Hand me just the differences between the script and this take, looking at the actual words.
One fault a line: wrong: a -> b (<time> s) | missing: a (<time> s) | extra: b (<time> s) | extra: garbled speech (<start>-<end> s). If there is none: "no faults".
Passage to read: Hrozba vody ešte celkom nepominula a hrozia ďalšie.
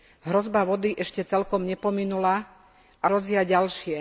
no faults